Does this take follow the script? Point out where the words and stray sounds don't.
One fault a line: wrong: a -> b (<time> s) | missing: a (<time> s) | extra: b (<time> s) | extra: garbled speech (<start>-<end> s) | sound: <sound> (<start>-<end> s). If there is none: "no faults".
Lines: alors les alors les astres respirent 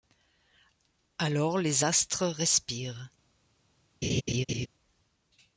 missing: alors les (1.9 s)
sound: laugh (4.0-4.7 s)